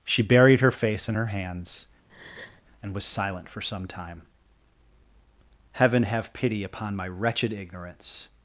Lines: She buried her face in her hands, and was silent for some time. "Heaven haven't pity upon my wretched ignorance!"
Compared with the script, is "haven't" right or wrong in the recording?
wrong